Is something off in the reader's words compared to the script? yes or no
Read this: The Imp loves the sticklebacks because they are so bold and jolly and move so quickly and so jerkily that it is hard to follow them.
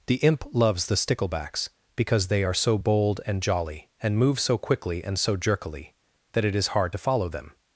no